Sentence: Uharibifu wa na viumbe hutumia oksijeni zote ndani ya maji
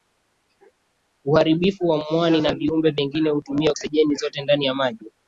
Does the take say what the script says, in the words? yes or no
no